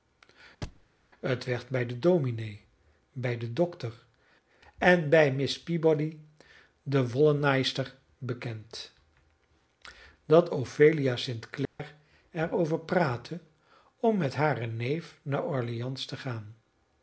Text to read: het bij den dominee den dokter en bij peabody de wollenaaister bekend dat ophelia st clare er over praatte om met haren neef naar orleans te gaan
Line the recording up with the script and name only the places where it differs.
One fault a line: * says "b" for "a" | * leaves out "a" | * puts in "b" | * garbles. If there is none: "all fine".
* puts in "werd"
* puts in "bij"
* puts in "miss"